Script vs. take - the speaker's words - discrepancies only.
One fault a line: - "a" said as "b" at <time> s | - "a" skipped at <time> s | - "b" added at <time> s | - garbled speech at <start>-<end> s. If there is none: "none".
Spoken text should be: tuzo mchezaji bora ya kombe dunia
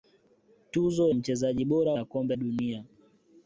none